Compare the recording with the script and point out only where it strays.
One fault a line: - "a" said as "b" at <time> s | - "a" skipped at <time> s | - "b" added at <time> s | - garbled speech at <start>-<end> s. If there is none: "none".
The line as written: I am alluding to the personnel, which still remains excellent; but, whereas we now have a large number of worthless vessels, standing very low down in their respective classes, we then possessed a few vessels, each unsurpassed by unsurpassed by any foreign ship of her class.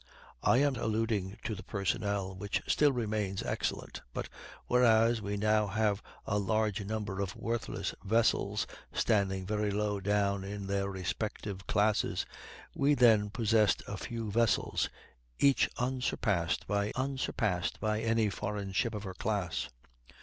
none